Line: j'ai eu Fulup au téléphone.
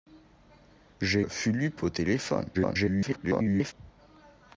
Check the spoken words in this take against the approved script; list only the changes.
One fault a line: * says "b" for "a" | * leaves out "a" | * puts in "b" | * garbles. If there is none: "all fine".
* leaves out "eu"
* garbles